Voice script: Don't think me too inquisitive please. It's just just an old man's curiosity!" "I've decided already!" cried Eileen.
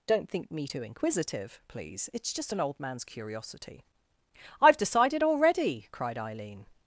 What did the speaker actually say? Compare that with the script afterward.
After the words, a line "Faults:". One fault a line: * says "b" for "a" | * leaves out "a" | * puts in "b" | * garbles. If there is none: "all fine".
Don't think me too inquisitive please. It's just an old man's curiosity!" "I've decided already!" cried Eileen.
Faults:
* leaves out "just"